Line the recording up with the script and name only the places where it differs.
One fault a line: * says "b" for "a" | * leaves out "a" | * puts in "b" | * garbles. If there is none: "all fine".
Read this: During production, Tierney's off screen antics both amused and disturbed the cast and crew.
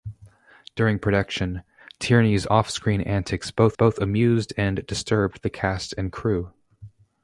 * puts in "both"